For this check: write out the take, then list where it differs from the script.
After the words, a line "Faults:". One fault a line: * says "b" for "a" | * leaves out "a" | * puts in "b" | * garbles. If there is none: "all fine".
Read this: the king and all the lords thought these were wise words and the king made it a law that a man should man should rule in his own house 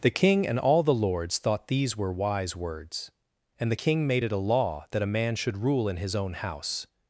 the king and all the lords thought these were wise words and the king made it a law that a man should rule in his own house
Faults:
* leaves out "man should"